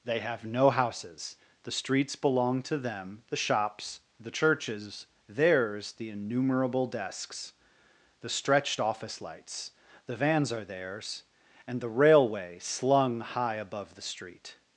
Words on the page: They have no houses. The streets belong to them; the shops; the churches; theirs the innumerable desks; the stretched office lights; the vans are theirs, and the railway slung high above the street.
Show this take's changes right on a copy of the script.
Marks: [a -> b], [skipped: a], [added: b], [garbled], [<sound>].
They have no houses. The streets belong to them; the shops; the churches; theirs the innumerable desks; the stretched office lights; the vans are theirs, and the railway slung high above the street.